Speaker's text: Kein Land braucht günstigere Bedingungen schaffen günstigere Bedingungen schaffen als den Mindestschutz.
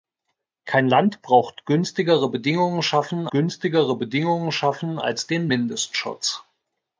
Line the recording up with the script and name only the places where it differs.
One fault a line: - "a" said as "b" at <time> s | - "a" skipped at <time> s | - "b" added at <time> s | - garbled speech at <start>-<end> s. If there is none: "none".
none